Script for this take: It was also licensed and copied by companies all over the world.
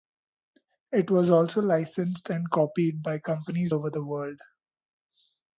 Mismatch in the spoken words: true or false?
true